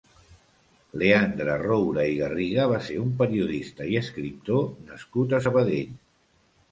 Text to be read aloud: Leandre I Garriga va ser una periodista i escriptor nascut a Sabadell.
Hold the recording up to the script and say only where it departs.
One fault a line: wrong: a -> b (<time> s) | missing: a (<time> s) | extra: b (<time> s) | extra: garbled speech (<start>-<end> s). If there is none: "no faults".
extra: Roura (1.6 s)
wrong: una -> un (3.0 s)